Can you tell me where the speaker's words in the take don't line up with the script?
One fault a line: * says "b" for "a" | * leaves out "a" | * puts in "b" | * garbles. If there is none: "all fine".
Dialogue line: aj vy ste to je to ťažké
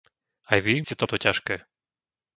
all fine